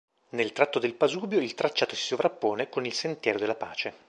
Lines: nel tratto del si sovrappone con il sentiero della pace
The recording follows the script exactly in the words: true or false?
false